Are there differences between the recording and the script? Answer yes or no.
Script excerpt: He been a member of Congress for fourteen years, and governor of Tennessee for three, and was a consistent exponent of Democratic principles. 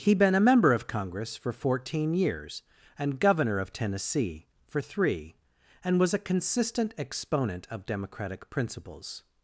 no